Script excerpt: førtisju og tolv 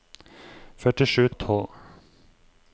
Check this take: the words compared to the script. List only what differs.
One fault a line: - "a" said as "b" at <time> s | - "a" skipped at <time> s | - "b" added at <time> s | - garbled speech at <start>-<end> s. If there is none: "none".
none